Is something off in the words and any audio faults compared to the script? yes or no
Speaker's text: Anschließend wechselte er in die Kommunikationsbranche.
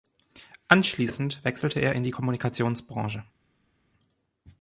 no